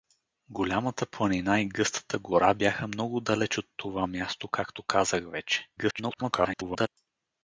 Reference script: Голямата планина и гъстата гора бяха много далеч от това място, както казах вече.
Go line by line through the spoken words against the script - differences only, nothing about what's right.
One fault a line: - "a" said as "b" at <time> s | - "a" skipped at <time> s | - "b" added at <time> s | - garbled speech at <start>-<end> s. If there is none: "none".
- garbled speech at 5.8-6.9 s